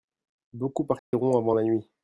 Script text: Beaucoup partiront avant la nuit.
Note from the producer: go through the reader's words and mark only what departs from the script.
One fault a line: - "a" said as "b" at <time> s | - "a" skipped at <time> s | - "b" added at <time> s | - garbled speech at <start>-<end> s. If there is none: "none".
none